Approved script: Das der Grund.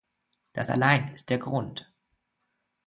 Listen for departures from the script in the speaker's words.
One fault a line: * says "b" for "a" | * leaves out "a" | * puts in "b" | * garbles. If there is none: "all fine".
* puts in "allein ist"